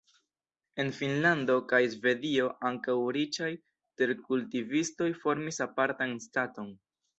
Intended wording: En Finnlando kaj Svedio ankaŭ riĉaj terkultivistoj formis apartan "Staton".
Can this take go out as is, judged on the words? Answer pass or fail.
pass